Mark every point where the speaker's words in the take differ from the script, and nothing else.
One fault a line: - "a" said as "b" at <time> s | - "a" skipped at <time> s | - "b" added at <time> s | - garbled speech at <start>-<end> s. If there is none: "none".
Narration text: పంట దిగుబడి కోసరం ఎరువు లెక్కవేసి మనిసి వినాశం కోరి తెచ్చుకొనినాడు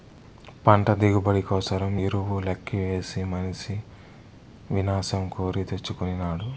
none